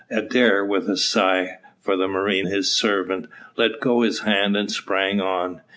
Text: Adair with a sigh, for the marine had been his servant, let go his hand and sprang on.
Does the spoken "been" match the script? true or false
false